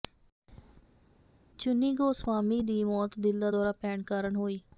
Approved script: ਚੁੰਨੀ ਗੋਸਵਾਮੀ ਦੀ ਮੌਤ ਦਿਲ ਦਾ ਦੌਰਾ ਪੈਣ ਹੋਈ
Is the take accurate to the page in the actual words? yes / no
no